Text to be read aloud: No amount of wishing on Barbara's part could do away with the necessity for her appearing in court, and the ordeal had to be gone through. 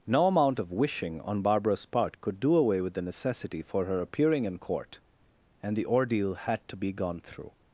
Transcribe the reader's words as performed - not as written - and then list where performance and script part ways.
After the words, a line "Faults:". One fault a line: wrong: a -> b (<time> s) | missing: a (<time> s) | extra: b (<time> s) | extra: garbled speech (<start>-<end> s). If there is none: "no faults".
No amount of wishing on Barbara's part could do away with the necessity for her appearing in court, and the ordeal had to be gone through.
Faults:
no faults